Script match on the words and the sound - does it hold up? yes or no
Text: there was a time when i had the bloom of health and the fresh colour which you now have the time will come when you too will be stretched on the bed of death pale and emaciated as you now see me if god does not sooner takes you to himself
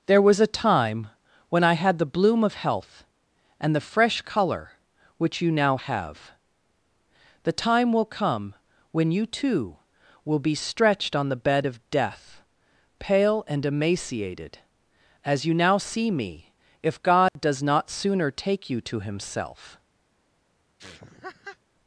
no